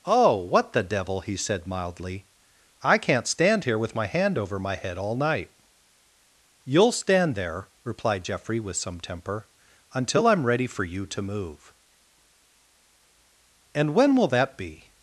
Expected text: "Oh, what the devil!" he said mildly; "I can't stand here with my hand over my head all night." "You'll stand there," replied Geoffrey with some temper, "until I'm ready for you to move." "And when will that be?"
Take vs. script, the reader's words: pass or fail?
pass